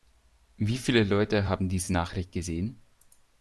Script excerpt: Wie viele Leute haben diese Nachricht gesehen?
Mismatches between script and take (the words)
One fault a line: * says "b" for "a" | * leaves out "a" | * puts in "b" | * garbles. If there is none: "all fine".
all fine